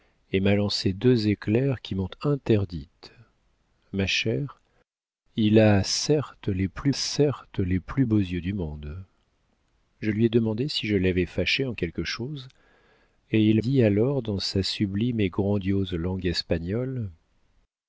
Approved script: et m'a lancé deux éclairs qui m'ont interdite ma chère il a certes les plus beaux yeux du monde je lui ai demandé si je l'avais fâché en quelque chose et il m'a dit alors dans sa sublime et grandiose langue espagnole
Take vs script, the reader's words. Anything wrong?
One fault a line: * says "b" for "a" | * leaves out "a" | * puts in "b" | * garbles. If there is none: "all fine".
* puts in "certes les plus"
* leaves out "m'a"